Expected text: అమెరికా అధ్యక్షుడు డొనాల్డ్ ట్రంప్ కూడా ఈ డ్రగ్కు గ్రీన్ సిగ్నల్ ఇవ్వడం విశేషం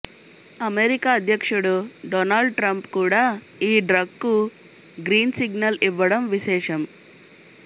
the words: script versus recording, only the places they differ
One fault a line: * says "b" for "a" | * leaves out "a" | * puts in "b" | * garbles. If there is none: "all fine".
all fine